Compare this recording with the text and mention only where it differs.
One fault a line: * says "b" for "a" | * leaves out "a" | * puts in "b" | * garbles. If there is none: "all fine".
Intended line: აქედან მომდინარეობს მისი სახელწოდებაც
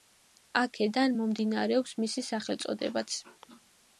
all fine